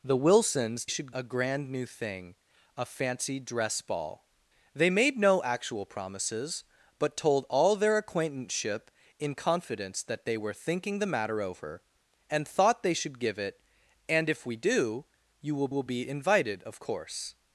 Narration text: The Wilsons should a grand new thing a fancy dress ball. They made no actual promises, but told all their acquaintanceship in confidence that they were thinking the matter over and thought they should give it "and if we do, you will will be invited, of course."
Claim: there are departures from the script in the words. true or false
false